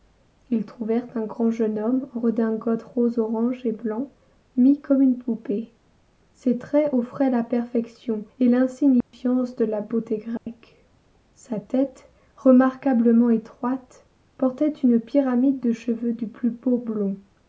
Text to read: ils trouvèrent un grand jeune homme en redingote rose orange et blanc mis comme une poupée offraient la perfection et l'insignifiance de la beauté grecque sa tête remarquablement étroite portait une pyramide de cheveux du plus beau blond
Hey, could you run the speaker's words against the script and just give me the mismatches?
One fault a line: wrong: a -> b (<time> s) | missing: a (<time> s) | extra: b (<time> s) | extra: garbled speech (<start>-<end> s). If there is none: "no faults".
extra: ses traits (6.3 s)